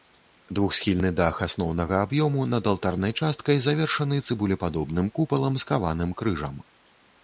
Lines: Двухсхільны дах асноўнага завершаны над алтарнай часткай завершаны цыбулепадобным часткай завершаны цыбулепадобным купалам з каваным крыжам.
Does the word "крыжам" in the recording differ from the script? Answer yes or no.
no